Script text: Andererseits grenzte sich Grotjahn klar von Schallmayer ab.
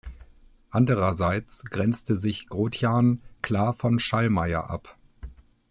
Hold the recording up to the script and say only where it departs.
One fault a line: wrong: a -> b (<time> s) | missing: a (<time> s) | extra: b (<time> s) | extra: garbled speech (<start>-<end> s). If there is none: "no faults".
no faults